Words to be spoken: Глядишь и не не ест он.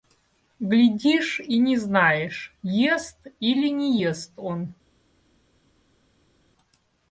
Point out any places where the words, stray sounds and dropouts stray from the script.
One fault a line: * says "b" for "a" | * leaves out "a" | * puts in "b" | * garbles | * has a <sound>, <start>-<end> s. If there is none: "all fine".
* puts in "знаешь ест или"